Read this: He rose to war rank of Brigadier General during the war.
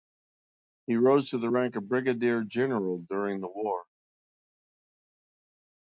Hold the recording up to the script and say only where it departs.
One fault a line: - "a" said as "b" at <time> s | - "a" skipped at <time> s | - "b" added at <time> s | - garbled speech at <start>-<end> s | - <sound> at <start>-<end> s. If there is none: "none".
- "war" said as "the" at 1.4 s